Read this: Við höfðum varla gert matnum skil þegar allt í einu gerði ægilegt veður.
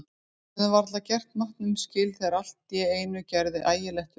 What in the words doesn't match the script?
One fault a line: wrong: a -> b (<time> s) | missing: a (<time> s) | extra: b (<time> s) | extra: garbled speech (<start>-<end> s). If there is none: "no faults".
no faults